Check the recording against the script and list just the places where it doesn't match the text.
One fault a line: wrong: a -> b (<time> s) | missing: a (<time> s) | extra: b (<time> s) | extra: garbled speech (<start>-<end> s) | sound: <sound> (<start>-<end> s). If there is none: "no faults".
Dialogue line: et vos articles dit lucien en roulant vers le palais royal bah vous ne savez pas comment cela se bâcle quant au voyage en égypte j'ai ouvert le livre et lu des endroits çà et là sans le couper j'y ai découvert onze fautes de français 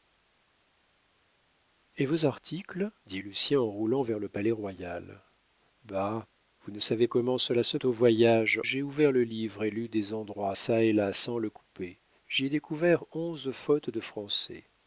missing: pas (7.1 s)
missing: bâcle quant (7.8 s)
missing: en égypte (8.6 s)